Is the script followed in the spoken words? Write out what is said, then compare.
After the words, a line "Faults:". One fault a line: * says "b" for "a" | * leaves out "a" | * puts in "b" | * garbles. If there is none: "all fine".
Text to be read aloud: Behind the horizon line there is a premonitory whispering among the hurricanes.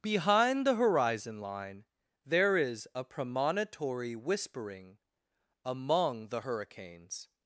Behind the horizon line there is a premonitory whispering among the hurricanes.
Faults:
all fine